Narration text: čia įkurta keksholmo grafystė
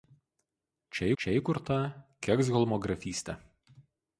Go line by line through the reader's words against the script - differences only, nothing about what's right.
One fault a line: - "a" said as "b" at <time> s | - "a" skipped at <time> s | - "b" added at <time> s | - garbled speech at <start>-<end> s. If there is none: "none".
- "čia" added at 1.2 s